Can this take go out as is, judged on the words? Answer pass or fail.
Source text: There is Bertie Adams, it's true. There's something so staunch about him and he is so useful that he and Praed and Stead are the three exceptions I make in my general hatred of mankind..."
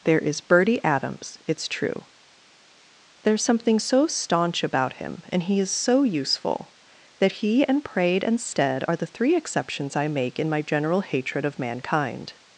pass